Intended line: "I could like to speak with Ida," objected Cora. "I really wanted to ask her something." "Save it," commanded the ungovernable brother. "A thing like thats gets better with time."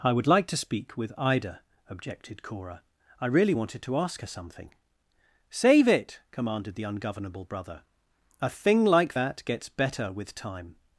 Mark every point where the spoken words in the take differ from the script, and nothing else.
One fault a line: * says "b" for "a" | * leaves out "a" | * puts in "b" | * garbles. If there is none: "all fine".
* says "would" for "could"
* says "that" for "thats"